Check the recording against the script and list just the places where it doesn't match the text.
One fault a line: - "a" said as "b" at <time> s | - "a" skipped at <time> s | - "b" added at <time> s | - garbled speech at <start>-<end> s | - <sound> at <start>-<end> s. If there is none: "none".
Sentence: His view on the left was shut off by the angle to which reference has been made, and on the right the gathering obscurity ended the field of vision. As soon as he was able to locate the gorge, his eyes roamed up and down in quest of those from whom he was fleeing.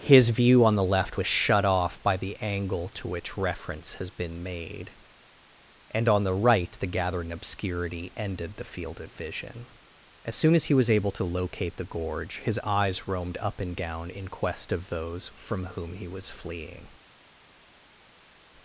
none